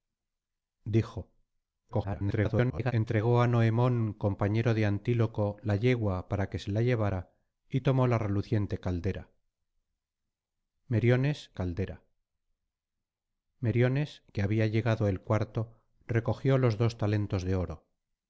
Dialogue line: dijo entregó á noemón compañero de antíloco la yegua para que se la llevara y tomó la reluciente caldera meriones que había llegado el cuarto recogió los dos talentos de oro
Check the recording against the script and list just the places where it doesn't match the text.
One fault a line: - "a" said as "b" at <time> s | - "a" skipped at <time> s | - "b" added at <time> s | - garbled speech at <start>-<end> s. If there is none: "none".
- garbled speech at 1.9-2.9 s
- "caldera meriones" added at 11.5 s